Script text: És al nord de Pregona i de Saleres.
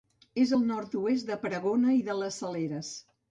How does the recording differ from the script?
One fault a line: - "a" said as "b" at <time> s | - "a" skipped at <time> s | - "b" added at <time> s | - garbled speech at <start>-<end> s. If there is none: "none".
- "oest" added at 1.0 s
- "les" added at 2.2 s